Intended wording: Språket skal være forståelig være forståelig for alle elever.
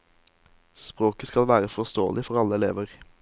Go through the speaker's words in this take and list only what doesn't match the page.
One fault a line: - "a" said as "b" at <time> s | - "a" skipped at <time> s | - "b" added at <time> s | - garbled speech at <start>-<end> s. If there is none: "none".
- "være forståelig" skipped at 2.2 s